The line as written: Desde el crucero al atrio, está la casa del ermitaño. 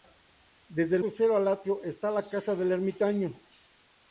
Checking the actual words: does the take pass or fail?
pass